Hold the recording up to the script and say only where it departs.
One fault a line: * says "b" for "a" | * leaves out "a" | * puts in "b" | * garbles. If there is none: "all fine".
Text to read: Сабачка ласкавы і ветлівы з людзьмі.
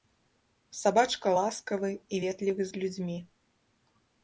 all fine